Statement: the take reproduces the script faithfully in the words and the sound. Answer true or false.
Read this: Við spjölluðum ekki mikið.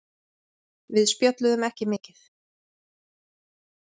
true